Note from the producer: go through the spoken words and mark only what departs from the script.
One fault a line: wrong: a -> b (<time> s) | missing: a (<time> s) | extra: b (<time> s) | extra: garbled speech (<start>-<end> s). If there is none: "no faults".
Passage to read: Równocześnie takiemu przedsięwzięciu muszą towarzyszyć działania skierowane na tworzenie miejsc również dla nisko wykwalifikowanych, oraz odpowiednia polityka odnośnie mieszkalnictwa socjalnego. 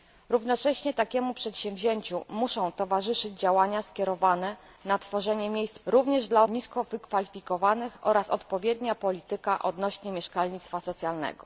no faults